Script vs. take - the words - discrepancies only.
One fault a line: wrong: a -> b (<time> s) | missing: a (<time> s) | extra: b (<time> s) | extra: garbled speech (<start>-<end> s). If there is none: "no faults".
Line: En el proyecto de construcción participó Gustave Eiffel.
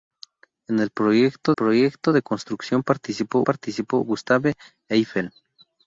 extra: proyecto (1.5 s)
extra: participó (3.4 s)